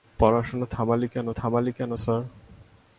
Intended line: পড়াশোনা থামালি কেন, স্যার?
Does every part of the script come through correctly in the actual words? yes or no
no